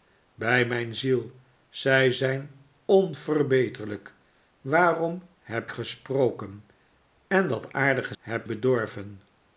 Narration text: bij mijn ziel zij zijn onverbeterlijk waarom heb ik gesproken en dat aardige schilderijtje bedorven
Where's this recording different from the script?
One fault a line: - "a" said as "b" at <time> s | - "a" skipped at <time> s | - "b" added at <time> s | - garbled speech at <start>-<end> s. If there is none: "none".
- "ik" skipped at 5.7 s
- "schilderijtje" said as "heb" at 8.2 s